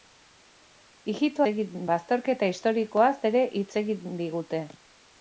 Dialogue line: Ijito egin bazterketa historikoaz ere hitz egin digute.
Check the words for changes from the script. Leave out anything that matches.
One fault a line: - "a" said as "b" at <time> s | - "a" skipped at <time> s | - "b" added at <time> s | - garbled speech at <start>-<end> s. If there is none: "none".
none